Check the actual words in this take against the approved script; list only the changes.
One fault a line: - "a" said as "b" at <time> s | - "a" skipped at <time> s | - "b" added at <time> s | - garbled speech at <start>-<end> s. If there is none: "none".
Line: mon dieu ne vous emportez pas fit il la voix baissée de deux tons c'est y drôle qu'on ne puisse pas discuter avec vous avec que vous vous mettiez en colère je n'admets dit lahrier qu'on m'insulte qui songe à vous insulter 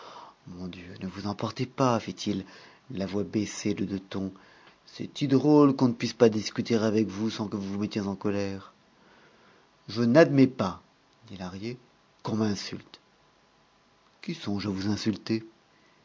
- "avec" said as "sans" at 7.3 s
- "pas" added at 10.5 s